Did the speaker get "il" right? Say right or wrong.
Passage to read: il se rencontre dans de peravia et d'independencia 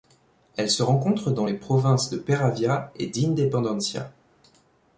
wrong